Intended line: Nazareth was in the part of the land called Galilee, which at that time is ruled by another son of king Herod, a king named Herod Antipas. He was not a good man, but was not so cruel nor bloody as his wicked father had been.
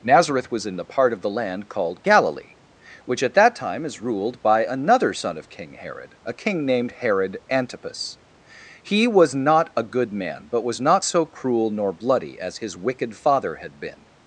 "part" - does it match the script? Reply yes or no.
yes